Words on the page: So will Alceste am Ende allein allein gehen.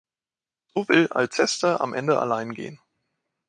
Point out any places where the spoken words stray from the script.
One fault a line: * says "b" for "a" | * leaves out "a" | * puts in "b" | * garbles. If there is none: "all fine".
* leaves out "allein"